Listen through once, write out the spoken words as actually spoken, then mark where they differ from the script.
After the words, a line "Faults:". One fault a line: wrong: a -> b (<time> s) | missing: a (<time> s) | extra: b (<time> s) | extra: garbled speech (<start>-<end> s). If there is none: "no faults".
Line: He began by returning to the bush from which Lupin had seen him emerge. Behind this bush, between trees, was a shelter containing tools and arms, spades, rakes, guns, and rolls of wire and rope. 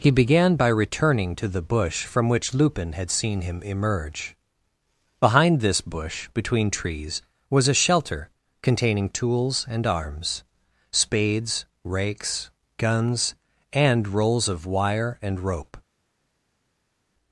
He began by returning to the bush from which Lupin had seen him emerge. Behind this bush, between trees, was a shelter containing tools and arms, spades, rakes, guns, and rolls of wire and rope.
Faults:
no faults